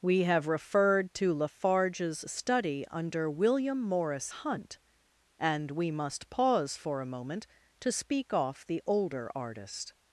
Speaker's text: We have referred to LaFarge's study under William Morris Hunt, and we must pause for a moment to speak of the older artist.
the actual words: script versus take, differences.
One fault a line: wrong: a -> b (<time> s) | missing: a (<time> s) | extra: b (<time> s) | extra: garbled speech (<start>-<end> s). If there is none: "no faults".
wrong: of -> off (8.3 s)